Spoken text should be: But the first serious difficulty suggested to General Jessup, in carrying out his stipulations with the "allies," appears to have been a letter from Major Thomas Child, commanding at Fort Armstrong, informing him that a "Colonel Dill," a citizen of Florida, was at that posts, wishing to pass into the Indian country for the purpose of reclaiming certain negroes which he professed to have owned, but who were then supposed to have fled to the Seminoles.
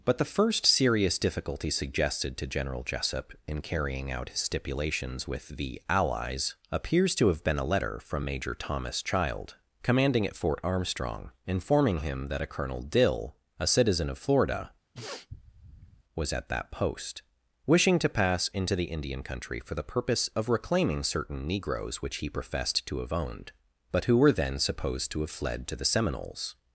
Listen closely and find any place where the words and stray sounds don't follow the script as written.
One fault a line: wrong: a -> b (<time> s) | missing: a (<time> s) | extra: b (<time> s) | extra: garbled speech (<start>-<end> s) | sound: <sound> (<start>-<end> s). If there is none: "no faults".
sound: sniff (14.9-16.0 s)
wrong: posts -> post (16.7 s)